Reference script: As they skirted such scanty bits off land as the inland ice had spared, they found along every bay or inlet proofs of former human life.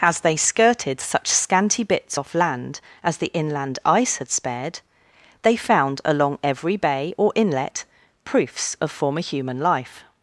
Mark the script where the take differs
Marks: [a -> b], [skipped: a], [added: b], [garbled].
As they skirted such scanty bits off land as the inland ice had spared, they found along every bay or inlet proofs of former human life.